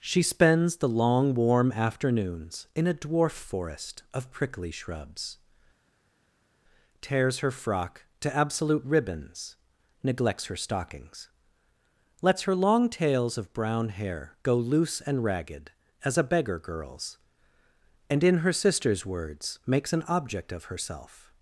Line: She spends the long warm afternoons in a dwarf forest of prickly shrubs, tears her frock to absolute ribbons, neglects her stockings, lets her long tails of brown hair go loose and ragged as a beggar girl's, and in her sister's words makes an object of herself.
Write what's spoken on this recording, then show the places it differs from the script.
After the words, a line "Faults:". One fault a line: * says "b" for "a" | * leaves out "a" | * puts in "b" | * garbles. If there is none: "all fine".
She spends the long warm afternoons in a dwarf forest of prickly shrubs, tears her frock to absolute ribbons, neglects her stockings, lets her long tails of brown hair go loose and ragged as a beggar girl's, and in her sister's words makes an object of herself.
Faults:
all fine